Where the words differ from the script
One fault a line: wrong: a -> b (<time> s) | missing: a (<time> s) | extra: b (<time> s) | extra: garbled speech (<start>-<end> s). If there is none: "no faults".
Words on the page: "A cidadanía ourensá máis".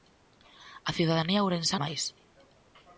no faults